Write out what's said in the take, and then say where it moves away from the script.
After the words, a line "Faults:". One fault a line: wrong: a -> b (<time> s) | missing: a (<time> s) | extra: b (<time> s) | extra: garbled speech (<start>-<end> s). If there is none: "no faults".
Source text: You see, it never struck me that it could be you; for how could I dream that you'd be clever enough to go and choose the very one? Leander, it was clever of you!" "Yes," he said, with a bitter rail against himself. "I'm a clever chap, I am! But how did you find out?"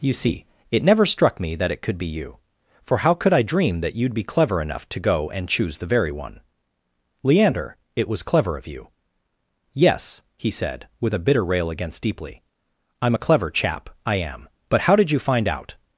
You see, it never struck me that it could be you; for how could I dream that you'd be clever enough to go and choose the very one? Leander, it was clever of you!" "Yes," he said, with a bitter rail against deeply. "I'm a clever chap, I am! But how did you find out?"
Faults:
wrong: himself -> deeply (12.0 s)